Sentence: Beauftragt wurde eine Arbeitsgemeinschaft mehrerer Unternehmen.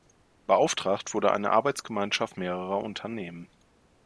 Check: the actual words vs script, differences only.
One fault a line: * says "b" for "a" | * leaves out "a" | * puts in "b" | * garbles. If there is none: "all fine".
all fine